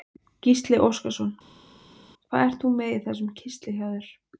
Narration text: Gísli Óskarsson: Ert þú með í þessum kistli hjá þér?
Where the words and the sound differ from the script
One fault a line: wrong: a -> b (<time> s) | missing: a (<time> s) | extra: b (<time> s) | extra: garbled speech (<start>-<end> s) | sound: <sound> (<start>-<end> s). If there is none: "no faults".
extra: Hvað (2.3 s)